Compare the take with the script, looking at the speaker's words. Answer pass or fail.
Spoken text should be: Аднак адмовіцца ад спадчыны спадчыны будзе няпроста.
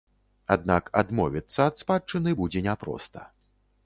fail